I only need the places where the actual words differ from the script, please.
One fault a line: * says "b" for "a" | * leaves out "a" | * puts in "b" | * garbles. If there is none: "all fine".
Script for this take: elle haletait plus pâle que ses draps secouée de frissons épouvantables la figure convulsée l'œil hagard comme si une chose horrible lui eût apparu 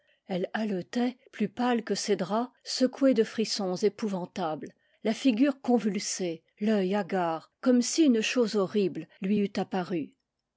all fine